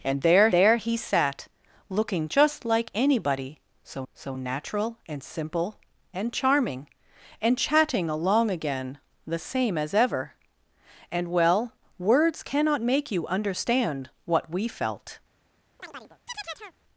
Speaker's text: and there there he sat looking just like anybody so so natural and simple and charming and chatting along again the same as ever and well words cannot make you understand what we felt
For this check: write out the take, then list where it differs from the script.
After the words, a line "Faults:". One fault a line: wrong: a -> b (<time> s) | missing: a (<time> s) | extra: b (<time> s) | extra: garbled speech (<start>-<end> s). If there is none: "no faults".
and there there he sat looking just like anybody so so natural and simple and charming and chatting along again the same as ever and well words cannot make you understand what we felt
Faults:
no faults